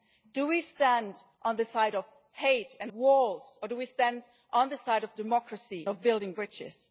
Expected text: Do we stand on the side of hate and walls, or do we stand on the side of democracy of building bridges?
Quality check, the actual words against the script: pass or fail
pass